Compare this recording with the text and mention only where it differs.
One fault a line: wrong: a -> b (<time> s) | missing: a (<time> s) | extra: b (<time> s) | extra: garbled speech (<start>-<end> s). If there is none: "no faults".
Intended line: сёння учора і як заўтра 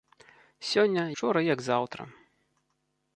no faults